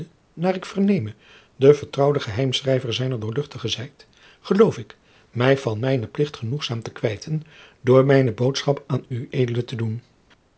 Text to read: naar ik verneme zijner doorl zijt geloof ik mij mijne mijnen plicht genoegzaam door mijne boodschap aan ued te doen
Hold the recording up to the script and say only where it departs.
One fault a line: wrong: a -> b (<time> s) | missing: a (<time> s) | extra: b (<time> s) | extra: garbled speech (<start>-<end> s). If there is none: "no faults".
extra: de vertrouwde geheimschrijver (1.6 s)
wrong: mijne -> van (5.6 s)
extra: te kwijten (6.8 s)